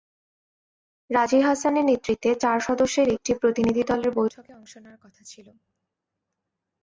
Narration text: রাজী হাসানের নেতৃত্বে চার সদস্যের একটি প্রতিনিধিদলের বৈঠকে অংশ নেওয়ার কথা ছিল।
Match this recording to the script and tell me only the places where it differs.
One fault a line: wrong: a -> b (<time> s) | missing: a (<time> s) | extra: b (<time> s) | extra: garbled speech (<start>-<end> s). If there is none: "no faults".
no faults